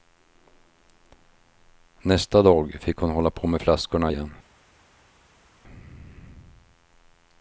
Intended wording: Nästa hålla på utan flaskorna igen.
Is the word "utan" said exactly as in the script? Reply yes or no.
no